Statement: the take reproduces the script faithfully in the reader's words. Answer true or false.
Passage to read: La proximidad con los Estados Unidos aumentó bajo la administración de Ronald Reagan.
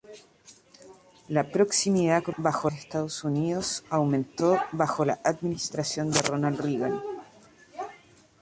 false